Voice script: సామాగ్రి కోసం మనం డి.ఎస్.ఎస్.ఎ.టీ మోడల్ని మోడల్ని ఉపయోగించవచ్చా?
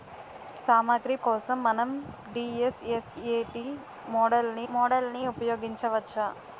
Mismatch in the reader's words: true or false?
false